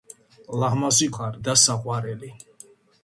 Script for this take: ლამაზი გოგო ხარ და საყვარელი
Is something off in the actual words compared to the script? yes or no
yes